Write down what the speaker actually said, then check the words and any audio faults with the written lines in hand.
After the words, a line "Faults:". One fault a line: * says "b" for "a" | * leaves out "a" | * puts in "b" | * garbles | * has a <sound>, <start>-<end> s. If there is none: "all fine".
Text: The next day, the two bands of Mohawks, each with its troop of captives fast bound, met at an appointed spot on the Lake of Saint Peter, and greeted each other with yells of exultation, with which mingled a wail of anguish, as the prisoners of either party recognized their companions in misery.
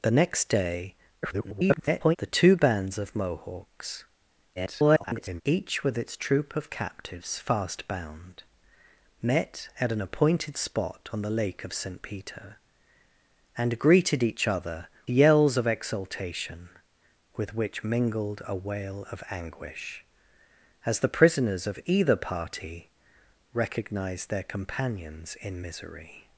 The next day, [garbled] the two bands of Mohawks, [garbled] each with its troop of captives fast bound, met at an appointed spot on the Lake of Saint Peter, and greeted each other yells of exultation, with which mingled a wail of anguish, as the prisoners of either party recognized their companions in misery.
Faults:
* garbles
* garbles
* leaves out "with"